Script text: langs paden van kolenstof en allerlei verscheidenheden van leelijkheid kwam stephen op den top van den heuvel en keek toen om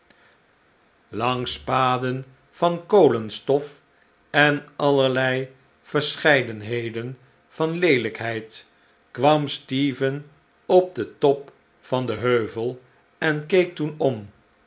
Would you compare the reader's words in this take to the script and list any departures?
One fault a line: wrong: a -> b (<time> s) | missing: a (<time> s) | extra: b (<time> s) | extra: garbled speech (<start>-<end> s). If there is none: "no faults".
no faults